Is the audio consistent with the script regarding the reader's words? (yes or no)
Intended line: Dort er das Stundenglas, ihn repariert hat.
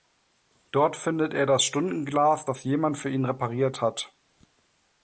no